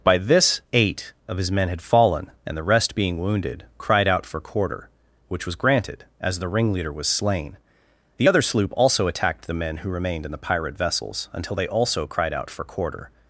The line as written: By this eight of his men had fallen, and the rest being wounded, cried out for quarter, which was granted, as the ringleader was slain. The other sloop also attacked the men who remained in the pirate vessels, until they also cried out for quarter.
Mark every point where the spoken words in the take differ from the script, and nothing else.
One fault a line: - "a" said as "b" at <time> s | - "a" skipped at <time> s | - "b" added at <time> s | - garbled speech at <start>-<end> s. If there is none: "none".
none